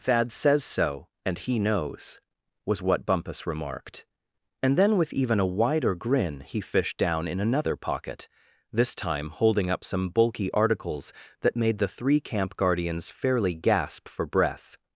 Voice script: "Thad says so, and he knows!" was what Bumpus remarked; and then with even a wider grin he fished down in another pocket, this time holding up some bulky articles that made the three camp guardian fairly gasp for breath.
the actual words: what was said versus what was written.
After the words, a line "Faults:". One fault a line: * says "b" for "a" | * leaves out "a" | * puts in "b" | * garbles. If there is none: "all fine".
"Thad says so, and he knows!" was what Bumpus remarked; and then with even a wider grin he fished down in another pocket, this time holding up some bulky articles that made the three camp guardians fairly gasp for breath.
Faults:
* says "guardians" for "guardian"